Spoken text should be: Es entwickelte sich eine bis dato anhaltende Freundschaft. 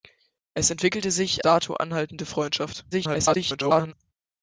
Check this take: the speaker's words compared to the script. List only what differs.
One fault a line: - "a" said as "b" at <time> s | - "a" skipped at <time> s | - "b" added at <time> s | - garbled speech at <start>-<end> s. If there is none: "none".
- "eine bis" skipped at 1.4 s
- garbled speech at 2.9-3.9 s